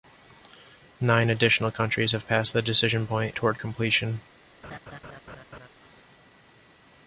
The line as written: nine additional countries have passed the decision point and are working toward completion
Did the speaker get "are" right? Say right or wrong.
wrong